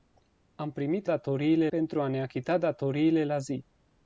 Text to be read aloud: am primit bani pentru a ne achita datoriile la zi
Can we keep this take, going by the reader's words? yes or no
no